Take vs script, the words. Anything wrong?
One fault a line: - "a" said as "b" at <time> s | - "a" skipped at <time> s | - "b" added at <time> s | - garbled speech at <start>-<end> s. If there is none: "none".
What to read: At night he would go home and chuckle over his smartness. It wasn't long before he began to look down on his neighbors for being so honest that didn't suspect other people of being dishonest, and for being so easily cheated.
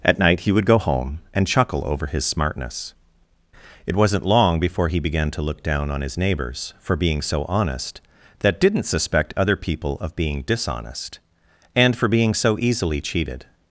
none